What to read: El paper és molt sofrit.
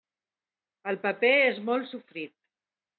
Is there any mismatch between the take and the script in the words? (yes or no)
no